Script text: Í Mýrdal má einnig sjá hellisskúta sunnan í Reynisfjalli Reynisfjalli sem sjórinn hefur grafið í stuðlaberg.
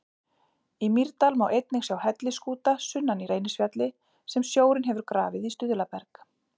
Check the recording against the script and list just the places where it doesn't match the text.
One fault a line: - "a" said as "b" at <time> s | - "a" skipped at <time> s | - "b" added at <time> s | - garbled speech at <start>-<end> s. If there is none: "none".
- "Reynisfjalli" skipped at 3.9 s